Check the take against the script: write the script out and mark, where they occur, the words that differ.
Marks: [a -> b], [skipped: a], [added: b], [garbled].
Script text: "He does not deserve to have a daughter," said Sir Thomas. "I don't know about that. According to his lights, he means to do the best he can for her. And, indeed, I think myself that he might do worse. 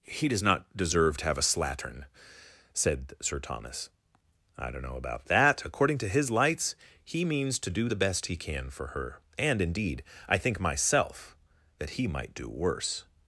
"He does not deserve to have a [daughter," -> slattern] said Sir Thomas. "I don't know about that. According to his lights, he means to do the best he can for her. And, indeed, I think myself that he might do worse.